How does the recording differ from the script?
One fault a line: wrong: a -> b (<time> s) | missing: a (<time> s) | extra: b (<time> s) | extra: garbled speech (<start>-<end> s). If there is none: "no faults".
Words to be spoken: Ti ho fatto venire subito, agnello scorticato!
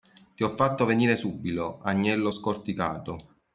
no faults